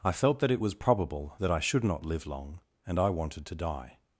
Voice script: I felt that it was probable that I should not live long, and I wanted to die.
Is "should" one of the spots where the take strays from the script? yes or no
no